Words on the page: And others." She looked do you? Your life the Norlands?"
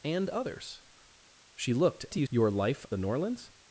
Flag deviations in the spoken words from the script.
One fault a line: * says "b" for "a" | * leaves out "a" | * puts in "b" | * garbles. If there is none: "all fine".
all fine